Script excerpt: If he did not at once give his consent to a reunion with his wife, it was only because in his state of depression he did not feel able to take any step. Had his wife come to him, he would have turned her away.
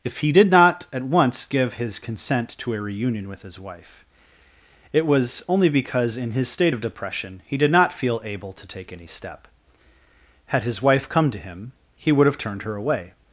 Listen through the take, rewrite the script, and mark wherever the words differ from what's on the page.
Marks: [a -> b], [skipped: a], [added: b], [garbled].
If he did not at once give his consent to a reunion with his wife, it was only because in his state of depression he did not feel able to take any step. Had his wife come to him, he would have turned her away.